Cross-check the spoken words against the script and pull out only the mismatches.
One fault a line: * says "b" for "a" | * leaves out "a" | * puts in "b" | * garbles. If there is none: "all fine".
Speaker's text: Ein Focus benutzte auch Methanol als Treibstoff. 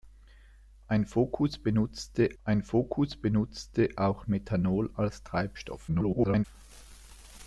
* puts in "ein Focus benutzte"
* garbles